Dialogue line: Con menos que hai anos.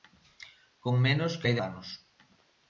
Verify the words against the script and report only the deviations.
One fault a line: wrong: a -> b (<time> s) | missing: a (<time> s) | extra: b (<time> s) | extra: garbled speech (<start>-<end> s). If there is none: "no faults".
no faults